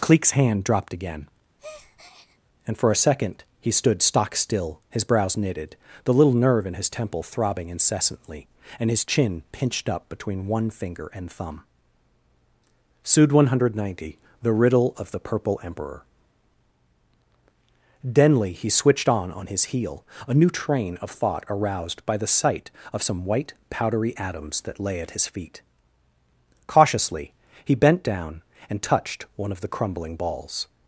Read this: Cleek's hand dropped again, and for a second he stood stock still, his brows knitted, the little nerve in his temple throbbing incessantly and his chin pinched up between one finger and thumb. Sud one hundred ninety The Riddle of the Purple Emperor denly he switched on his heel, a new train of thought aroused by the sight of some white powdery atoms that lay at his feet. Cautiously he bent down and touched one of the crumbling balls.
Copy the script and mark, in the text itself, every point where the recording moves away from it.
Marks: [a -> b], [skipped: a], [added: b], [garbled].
Cleek's hand dropped again, and for a second he stood stock still, his brows knitted, the little nerve in his temple throbbing incessantly and his chin pinched up between one finger and thumb. Sud one hundred ninety The Riddle of the Purple Emperor denly he switched on [added: on] his heel, a new train of thought aroused by the sight of some white powdery atoms that lay at his feet. Cautiously he bent down and touched one of the crumbling balls.